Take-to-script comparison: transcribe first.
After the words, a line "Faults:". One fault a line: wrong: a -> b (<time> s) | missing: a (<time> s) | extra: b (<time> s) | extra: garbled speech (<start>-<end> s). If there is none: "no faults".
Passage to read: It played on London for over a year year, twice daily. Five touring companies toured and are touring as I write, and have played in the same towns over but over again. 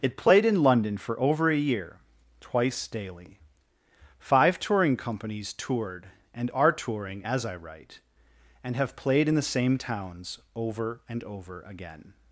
It played in London for over a year, twice daily. Five touring companies toured and are touring as I write, and have played in the same towns over and over again.
Faults:
wrong: on -> in (0.5 s)
missing: year (2.0 s)
wrong: but -> and (11.1 s)